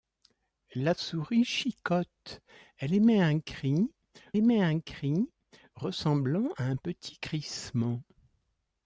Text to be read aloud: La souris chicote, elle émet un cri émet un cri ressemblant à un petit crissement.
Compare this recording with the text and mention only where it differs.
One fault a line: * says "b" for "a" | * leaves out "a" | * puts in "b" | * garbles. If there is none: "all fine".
all fine